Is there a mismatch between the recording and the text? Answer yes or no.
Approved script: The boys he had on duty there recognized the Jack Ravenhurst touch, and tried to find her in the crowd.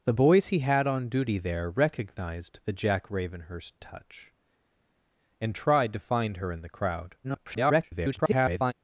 yes